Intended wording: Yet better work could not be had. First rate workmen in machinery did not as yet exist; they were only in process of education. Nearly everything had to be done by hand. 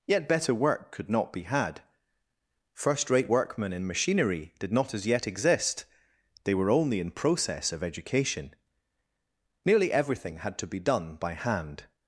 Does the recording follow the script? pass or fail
pass